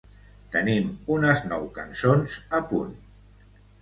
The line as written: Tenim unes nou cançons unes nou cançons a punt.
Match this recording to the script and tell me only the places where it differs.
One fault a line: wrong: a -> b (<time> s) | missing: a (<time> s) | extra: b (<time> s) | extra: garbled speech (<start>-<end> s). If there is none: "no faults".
missing: unes nou cançons (2.4 s)